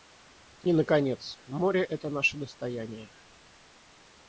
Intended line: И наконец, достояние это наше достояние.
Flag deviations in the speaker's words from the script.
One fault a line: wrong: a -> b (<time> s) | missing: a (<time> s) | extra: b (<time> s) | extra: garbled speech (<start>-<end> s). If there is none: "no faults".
wrong: достояние -> море (1.4 s)